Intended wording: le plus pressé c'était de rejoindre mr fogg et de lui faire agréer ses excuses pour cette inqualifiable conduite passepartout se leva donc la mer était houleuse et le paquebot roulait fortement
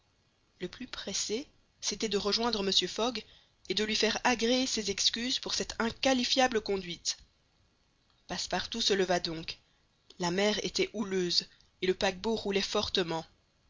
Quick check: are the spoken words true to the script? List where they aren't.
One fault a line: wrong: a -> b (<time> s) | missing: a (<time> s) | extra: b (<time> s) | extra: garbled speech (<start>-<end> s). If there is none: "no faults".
no faults